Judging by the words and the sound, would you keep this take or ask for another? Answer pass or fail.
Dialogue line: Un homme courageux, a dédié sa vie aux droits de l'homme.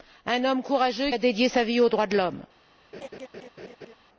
fail